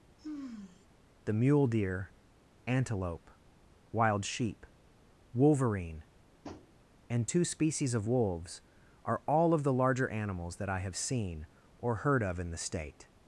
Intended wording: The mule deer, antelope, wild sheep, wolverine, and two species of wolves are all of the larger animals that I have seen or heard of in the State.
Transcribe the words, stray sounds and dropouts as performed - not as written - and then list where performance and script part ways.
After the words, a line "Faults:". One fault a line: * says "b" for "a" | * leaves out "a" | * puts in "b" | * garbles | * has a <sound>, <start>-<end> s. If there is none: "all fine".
The mule deer, antelope, wild sheep, wolverine, and two species of wolves are all of the larger animals that I have seen or heard of in the State.
Faults:
* has a sigh, 0.2-0.9 s
* has a tap, 6.4-6.7 s